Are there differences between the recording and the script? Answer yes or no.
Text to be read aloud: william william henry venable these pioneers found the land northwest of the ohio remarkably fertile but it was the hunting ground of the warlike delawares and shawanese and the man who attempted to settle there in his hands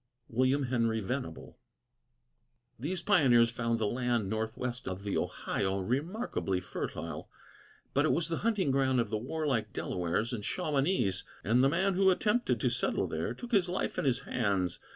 yes